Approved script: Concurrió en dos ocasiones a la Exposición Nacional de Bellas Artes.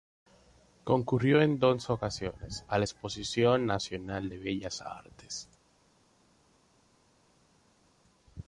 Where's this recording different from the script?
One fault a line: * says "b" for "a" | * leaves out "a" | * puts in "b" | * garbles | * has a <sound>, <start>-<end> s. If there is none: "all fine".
all fine